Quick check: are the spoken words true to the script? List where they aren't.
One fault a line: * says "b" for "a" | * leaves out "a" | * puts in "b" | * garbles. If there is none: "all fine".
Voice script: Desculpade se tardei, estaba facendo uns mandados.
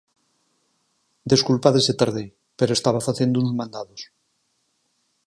* puts in "pero"